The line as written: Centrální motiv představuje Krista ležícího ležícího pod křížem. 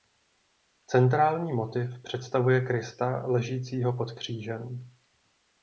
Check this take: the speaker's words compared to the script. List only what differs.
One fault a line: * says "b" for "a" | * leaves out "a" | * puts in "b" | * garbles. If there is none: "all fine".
* leaves out "ležícího"